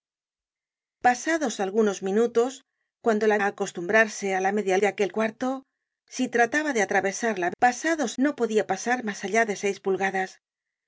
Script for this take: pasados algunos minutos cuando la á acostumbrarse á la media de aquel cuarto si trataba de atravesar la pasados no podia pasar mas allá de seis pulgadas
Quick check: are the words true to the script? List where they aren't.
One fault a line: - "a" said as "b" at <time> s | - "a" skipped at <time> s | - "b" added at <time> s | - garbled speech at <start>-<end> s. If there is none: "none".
none